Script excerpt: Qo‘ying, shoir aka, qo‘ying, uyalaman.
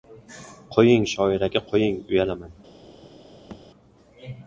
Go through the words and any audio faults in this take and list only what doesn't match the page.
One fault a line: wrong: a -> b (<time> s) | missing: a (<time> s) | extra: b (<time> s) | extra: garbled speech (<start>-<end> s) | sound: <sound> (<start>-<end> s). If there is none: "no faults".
sound: thud (3.5-3.6 s)